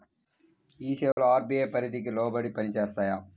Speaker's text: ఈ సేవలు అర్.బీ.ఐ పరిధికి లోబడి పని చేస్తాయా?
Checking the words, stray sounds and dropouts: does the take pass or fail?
fail